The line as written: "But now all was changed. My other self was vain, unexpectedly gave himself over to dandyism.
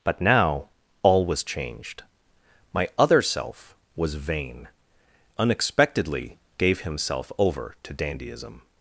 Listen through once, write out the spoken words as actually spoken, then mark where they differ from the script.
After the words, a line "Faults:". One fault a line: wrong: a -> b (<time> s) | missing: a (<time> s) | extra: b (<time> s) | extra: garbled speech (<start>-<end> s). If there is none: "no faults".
"But now all was changed. My other self was vain, unexpectedly gave himself over to dandyism.
Faults:
no faults